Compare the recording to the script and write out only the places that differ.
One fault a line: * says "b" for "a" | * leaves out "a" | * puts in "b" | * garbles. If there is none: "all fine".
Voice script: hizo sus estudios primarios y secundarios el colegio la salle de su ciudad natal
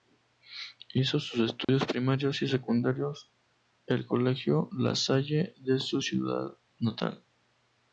all fine